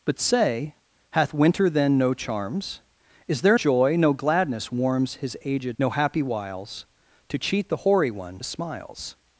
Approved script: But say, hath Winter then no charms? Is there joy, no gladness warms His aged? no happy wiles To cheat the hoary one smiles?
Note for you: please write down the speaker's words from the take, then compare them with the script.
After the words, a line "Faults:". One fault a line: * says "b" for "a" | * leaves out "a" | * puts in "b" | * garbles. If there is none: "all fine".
But say, hath Winter then no charms? Is there joy, no gladness warms His aged? no happy wiles To cheat the hoary one smiles?
Faults:
all fine